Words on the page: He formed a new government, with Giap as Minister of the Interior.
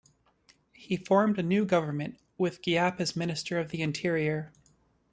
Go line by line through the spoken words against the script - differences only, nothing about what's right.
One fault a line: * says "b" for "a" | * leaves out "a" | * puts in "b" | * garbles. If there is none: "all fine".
all fine